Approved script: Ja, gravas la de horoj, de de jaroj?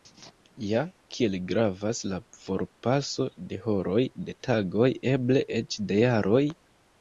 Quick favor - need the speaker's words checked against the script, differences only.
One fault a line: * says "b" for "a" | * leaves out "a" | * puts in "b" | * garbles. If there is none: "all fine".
* puts in "kiel"
* puts in "forpaso"
* puts in "tagoj eble eĉ"